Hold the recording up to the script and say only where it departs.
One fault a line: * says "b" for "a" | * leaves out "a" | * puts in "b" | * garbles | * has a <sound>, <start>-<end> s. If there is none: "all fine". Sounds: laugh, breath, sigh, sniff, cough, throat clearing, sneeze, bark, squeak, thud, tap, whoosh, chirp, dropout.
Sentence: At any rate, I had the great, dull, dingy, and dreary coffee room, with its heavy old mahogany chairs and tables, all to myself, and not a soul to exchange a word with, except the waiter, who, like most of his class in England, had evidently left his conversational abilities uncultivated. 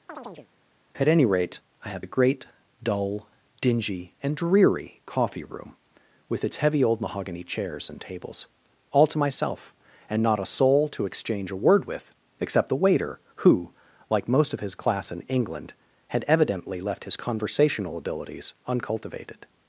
* has a chirp, 0.1-0.5 s